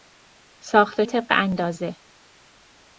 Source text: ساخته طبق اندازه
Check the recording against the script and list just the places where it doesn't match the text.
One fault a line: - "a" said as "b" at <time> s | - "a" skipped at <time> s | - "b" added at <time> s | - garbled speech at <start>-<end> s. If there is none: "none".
none